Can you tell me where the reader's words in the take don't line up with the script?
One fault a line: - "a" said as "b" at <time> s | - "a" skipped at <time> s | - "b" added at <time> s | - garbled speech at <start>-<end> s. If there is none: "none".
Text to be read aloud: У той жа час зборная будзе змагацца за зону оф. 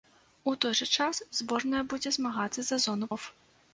none